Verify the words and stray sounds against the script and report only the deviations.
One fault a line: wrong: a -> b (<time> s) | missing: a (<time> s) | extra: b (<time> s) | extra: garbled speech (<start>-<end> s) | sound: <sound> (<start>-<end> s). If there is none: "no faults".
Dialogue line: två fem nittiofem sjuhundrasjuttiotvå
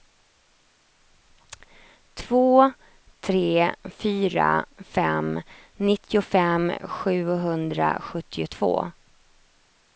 extra: tre fyra (3.2 s)